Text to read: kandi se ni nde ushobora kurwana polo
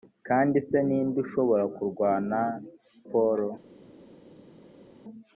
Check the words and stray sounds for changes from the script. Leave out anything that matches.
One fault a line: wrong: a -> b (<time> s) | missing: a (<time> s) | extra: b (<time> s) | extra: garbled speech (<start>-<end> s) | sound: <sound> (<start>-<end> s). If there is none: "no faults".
no faults